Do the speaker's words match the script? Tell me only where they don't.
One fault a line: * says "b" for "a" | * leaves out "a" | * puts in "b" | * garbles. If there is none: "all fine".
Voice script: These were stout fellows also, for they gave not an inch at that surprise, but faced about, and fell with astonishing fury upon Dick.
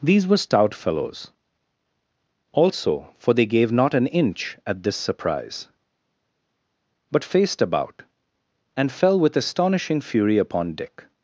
* says "this" for "that"